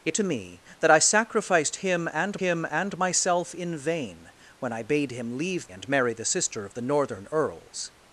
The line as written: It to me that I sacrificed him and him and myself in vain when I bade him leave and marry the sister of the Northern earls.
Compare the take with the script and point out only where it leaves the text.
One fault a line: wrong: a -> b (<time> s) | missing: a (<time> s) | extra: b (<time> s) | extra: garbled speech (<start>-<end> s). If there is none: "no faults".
no faults